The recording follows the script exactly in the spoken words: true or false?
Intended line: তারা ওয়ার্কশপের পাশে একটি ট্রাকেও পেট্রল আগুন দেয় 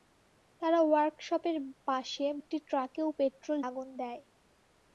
true